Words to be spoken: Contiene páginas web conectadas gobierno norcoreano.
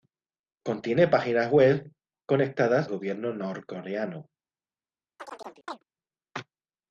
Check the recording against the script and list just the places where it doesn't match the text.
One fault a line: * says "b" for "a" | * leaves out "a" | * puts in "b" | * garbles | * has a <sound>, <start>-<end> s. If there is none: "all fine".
* has a chirp, 5.2-5.8 s